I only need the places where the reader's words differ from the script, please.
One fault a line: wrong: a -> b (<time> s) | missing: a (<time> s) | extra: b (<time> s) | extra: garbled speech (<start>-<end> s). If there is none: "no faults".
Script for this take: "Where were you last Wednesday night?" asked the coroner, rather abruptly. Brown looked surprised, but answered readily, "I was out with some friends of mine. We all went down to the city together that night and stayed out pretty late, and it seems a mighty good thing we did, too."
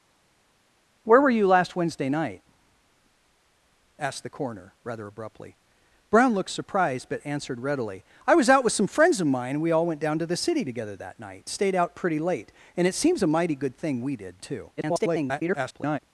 missing: and (11.4 s)
extra: garbled speech (14.8-16.0 s)